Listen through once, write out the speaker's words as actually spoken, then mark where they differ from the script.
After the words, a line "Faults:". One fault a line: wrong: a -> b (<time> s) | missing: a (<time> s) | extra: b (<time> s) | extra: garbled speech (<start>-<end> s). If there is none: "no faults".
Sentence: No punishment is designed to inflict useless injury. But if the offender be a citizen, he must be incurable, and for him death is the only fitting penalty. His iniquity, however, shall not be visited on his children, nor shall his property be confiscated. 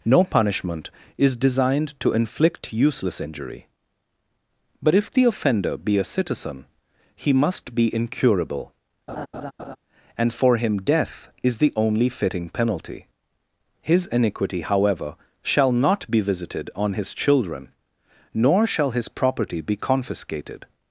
No punishment is designed to inflict useless injury. But if the offender be a citizen, he must be incurable, and for him death is the only fitting penalty. His iniquity, however, shall not be visited on his children, nor shall his property be confiscated.
Faults:
no faults